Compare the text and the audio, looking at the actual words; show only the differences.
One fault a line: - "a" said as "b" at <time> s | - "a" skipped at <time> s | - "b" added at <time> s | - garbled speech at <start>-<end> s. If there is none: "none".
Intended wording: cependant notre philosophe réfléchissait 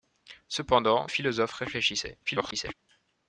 - "notre" skipped at 1.1 s
- garbled speech at 2.3-2.7 s